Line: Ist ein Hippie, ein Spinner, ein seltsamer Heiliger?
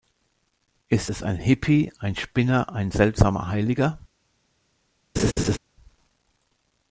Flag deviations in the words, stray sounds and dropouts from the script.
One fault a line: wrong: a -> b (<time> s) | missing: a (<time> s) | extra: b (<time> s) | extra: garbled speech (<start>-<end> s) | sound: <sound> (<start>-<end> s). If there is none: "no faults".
extra: es (1.1 s)
sound: laugh (5.2-5.6 s)